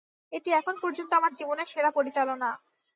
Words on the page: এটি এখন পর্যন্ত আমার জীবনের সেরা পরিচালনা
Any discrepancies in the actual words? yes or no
no